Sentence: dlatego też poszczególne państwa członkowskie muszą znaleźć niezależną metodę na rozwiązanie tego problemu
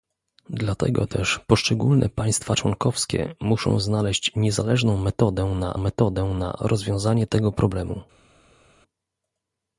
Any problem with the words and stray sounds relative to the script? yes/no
yes